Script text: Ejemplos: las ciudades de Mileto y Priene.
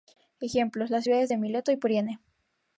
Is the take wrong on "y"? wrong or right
right